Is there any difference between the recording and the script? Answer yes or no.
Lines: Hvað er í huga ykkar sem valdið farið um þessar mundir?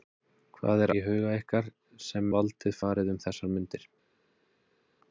no